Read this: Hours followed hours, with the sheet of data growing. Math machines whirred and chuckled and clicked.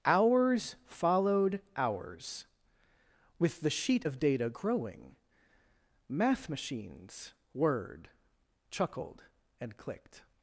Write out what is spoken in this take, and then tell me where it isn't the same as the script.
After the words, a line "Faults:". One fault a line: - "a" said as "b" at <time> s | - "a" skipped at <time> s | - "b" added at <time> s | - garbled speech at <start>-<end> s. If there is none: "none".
Hours followed hours, with the sheet of data growing. Math machines whirred chuckled and clicked.
Faults:
- "and" skipped at 8.1 s